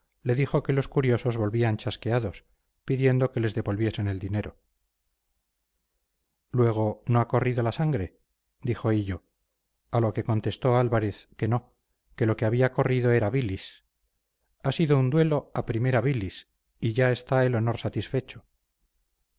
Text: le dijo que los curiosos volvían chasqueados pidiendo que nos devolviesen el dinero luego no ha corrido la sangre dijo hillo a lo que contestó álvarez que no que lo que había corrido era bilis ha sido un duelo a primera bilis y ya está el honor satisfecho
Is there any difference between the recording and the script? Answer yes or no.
yes